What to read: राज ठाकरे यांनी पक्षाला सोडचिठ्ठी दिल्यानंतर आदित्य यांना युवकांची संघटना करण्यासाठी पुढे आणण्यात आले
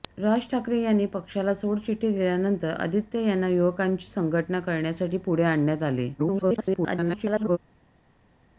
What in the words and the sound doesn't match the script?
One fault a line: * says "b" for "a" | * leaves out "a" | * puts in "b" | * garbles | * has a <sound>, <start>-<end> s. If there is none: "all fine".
* garbles